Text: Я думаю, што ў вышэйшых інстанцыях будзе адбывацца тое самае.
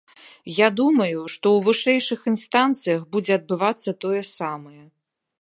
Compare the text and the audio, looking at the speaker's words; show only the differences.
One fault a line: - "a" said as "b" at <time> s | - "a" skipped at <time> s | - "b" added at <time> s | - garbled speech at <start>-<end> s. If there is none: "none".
none